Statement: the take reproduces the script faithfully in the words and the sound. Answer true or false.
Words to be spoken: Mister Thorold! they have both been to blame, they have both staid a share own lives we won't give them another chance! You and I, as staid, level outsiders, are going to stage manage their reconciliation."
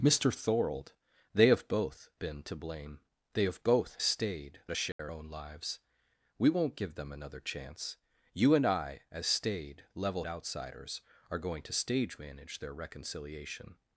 false